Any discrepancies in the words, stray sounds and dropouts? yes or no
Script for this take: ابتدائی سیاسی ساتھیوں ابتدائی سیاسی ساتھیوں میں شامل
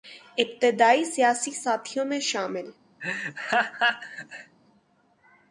yes